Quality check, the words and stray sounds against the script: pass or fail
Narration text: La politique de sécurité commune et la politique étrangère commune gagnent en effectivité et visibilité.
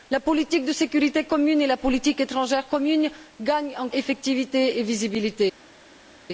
pass